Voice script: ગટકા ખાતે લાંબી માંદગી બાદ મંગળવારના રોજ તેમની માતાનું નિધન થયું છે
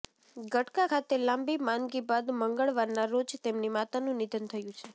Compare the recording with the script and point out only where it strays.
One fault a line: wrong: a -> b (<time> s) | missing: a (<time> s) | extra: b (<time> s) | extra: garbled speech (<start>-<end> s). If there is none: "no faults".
no faults